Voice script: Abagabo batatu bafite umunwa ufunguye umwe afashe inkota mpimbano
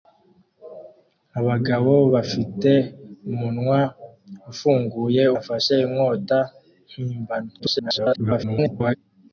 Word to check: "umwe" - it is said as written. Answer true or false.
false